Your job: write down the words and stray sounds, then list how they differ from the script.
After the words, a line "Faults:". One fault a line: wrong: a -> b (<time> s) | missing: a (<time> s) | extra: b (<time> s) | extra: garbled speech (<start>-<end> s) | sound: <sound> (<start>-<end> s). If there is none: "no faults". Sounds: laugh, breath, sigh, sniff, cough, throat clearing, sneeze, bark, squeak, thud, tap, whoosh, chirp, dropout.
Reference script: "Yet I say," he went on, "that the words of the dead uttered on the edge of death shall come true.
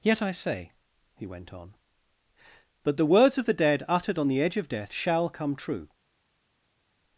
"Yet I say," he went on, "but the words of the dead uttered on the edge of death shall come true.
Faults:
wrong: that -> but (2.8 s)